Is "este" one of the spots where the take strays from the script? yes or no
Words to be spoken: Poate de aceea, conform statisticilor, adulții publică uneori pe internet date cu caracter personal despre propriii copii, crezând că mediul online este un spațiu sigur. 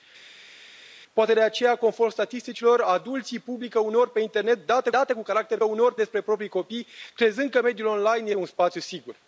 yes